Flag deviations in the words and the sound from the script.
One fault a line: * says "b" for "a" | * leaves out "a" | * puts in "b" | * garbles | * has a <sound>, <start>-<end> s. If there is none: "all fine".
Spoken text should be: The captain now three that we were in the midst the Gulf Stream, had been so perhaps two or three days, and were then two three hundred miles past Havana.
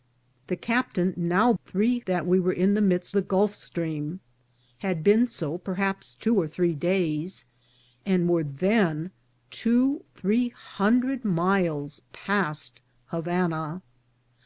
all fine